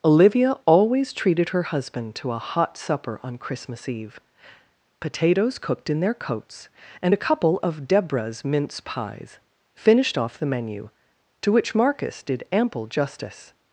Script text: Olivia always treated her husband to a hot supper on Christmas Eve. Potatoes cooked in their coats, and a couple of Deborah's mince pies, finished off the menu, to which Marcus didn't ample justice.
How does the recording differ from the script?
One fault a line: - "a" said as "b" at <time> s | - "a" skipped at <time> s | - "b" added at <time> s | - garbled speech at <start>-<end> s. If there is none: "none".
- "didn't" said as "did" at 12.2 s